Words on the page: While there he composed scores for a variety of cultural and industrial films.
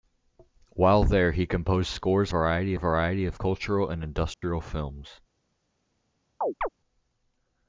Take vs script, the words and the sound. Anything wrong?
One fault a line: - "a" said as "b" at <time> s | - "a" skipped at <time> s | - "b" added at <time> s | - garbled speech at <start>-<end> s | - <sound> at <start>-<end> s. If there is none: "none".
- "for" said as "variety" at 2.3 s
- dropout at 4.3-4.4 s
- chirp at 6.4-6.7 s